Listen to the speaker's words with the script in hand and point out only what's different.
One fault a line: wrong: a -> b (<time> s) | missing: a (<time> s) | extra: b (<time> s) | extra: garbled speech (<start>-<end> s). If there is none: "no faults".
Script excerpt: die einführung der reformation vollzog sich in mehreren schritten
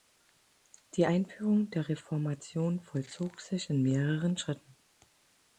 no faults